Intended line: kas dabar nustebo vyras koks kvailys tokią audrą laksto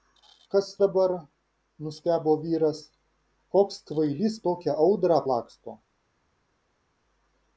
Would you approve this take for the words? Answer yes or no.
yes